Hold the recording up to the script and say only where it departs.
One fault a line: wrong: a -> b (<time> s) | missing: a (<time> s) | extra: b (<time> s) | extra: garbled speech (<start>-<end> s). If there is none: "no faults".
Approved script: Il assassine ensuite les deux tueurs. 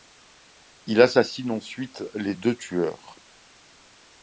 no faults